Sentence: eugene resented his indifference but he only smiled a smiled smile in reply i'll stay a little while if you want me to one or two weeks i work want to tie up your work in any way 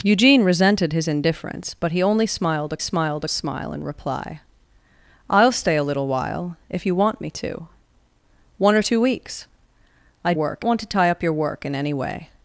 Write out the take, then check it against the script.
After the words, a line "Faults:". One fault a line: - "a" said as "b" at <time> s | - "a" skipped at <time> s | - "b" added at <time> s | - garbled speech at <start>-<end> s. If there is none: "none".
eugene resented his indifference but he only smiled a smiled smile in reply i'll stay a little while if you want me to one or two weeks i work want to tie up your work in any way
Faults:
none